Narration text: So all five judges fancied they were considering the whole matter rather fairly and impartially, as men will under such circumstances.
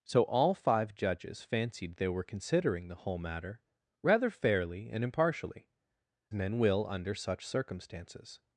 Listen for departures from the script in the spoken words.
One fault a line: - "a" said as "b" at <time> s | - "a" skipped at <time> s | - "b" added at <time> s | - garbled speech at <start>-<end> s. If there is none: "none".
- "as" skipped at 5.7 s